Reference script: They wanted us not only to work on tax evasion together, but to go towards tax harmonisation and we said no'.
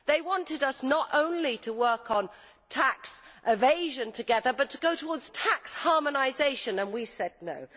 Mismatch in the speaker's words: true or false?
false